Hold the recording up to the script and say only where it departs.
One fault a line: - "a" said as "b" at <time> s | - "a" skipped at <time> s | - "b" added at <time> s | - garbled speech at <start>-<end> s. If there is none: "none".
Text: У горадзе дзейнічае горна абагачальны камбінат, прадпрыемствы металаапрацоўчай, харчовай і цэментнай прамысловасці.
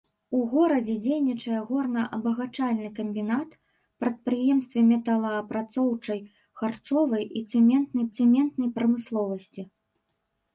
- "цэментнай" added at 8.2 s